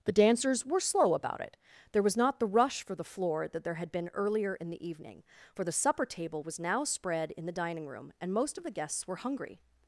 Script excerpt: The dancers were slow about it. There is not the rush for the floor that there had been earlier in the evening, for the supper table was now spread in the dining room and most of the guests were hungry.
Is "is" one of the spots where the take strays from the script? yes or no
yes